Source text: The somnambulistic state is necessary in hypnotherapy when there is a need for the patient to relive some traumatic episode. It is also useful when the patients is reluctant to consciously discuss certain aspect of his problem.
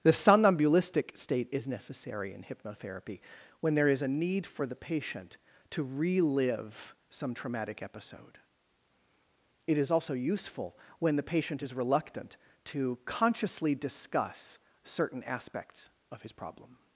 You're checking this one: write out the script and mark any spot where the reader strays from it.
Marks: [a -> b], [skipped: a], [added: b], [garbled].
The somnambulistic state is necessary in hypnotherapy when there is a need for the patient to relive some traumatic episode. It is also useful when the [patients -> patient] is reluctant to consciously discuss certain [aspect -> aspects] of his problem.